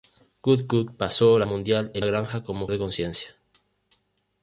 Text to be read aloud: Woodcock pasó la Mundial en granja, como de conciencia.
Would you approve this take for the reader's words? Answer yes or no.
yes